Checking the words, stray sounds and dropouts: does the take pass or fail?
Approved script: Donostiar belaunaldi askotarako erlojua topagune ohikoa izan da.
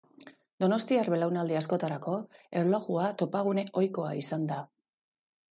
pass